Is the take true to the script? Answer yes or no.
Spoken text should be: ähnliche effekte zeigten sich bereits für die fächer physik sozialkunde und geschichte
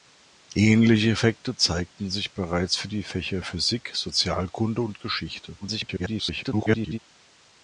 no